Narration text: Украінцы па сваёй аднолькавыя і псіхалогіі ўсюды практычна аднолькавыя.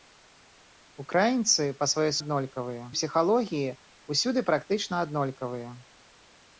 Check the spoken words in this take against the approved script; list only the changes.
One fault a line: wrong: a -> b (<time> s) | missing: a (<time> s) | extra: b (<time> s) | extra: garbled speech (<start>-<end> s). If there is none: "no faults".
no faults